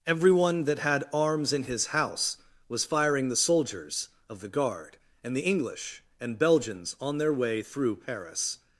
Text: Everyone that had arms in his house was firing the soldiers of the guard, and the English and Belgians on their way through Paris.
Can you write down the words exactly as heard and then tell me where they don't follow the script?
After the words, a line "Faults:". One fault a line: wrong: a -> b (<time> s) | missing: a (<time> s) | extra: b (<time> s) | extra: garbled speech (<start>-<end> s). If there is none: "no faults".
Everyone that had arms in his house was firing the soldiers of the guard, and the English and Belgians on their way through Paris.
Faults:
no faults